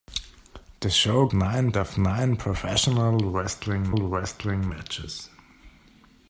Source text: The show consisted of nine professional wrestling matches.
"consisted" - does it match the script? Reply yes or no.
no